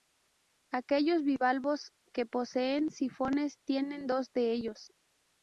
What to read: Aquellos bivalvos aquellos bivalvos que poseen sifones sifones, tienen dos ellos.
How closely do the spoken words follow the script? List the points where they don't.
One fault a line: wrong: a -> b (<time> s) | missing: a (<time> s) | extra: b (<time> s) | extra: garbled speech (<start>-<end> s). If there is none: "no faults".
missing: aquellos bivalvos (1.9 s)
missing: sifones (3.6 s)
extra: de (4.3 s)